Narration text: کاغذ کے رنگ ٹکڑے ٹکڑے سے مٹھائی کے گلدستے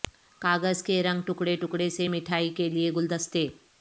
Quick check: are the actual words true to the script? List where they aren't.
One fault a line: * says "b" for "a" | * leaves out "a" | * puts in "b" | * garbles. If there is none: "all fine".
* puts in "لئے"